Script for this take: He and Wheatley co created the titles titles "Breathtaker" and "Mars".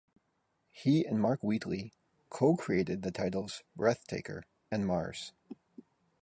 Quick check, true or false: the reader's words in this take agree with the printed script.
false